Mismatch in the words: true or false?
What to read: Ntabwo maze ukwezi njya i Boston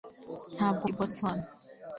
true